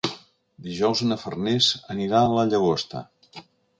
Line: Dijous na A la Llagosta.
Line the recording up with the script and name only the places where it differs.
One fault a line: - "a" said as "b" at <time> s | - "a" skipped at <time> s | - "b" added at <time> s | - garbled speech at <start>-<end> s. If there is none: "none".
- "Farners anirà" added at 1.2 s